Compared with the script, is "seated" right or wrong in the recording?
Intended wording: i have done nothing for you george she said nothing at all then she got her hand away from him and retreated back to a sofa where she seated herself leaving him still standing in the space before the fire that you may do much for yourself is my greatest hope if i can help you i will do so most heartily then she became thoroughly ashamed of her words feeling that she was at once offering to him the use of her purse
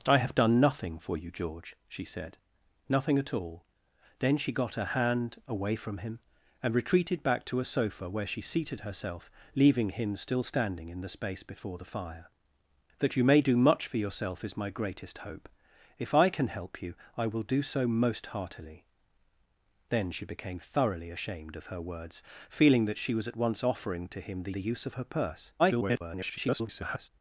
right